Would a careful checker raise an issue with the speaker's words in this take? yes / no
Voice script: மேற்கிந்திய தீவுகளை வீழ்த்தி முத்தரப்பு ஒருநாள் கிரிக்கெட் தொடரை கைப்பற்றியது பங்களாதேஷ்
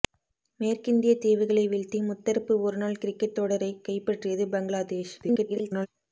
yes